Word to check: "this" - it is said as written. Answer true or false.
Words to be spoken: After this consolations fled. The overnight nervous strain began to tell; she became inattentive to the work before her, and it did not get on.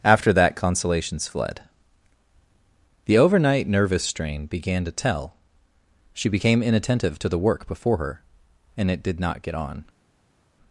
false